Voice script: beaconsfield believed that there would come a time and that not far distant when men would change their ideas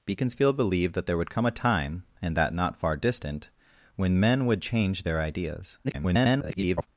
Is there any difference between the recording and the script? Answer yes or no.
yes